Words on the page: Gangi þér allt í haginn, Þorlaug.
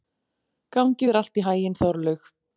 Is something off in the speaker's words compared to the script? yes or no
no